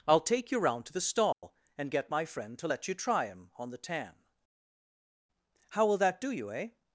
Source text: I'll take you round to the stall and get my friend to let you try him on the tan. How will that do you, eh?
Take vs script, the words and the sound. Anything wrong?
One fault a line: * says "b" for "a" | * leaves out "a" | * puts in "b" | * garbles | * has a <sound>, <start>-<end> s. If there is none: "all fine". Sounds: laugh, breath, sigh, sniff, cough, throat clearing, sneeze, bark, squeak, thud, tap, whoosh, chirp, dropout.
* has a dropout, 1.3-1.4 s